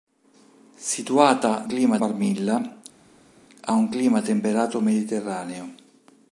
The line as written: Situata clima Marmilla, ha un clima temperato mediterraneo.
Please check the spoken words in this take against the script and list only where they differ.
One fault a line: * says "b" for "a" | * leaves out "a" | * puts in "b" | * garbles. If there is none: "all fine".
all fine